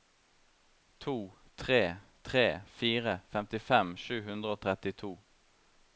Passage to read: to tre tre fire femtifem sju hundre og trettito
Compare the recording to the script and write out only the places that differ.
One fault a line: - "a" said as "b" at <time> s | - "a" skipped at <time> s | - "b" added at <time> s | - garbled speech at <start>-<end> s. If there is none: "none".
none